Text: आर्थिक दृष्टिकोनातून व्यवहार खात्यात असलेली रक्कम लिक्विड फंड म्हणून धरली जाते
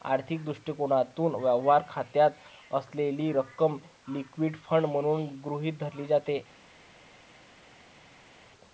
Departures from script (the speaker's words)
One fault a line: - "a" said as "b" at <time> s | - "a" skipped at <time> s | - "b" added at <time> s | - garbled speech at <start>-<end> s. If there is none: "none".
- "गृहीत" added at 5.5 s